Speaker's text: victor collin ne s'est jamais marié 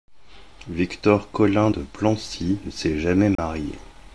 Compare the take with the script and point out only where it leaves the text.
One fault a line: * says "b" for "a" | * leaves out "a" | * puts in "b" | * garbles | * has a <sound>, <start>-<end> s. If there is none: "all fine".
* puts in "de plancy"
* has a dropout, 3.4-3.4 s